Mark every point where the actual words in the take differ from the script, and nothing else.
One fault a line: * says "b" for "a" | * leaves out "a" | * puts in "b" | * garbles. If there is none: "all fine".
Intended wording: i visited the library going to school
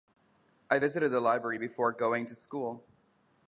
* puts in "before"